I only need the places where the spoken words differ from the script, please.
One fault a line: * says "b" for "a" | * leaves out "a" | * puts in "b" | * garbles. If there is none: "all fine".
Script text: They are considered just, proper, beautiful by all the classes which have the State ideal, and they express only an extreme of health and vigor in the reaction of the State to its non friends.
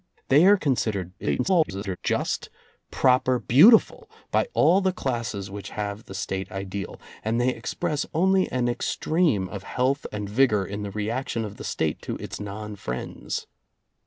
* garbles